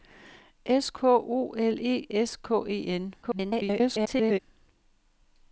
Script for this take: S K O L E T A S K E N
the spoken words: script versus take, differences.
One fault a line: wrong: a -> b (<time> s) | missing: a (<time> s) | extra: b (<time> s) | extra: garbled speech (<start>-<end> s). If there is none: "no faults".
missing: T A (2.1 s)
extra: garbled speech (3.2-4.4 s)